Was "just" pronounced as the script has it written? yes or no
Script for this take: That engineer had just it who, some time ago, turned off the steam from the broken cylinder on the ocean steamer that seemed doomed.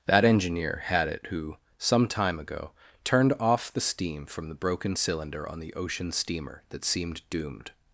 no